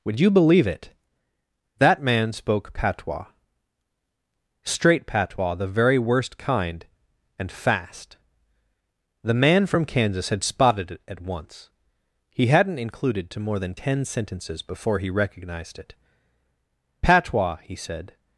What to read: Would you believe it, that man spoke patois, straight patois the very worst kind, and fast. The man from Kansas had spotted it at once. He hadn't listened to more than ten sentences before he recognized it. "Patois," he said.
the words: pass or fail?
fail